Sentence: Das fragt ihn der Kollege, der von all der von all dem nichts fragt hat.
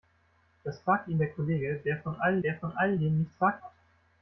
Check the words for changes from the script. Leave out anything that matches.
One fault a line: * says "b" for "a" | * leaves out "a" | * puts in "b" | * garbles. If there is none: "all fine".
all fine